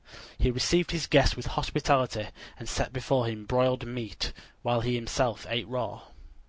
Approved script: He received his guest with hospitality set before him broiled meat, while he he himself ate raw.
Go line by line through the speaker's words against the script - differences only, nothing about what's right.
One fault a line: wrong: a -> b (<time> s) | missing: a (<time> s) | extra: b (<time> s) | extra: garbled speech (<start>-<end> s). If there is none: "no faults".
extra: and (2.6 s)
missing: he (5.0 s)